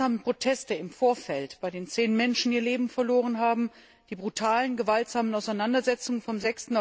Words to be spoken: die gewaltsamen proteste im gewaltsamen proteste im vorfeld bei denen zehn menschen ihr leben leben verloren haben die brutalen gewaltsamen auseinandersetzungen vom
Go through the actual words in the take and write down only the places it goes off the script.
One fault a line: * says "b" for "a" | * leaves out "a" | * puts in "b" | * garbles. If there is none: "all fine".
* leaves out "gewaltsamen proteste im"
* leaves out "leben"